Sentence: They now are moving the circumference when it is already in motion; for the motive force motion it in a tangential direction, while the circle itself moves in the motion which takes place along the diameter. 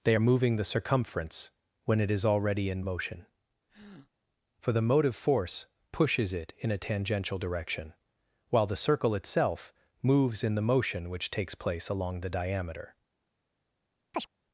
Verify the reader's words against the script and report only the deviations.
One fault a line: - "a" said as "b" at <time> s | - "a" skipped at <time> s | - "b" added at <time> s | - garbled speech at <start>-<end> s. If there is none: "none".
- "now" skipped at 0.1 s
- "motion" said as "pushes" at 5.9 s